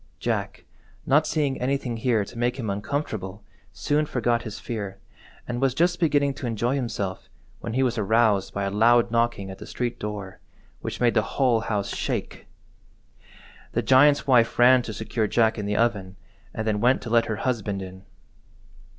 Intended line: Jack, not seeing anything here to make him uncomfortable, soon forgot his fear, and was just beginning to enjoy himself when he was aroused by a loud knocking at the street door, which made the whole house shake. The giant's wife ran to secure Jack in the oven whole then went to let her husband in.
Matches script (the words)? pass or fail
fail